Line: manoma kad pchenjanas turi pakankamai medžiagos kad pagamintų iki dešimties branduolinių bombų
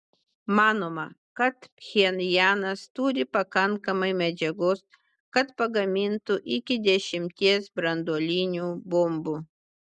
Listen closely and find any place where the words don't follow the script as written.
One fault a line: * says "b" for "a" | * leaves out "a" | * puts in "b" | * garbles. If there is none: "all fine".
all fine